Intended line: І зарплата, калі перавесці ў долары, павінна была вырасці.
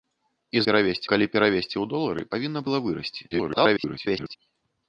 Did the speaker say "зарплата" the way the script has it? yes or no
no